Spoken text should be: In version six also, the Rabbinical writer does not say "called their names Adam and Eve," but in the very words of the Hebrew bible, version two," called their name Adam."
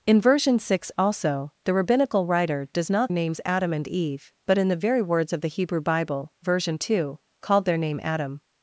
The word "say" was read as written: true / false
false